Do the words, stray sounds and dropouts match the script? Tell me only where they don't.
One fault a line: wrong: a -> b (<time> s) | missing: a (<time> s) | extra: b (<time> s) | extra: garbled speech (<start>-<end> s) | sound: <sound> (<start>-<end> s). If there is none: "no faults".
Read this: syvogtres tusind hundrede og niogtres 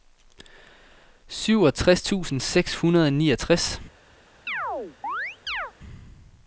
extra: seks (2.4 s)
sound: chirp (4.5-5.7 s)